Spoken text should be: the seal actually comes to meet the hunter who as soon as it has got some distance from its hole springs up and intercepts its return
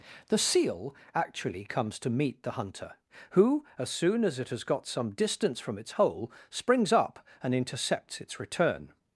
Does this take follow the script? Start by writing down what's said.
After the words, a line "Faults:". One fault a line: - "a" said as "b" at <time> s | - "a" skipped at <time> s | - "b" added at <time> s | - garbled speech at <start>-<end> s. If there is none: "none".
the seal actually comes to meet the hunter who as soon as it has got some distance from its hole springs up and intercepts its return
Faults:
none